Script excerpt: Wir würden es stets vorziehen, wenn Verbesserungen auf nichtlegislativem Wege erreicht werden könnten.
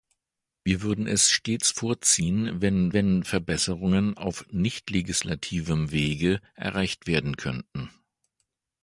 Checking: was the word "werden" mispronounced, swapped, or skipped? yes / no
no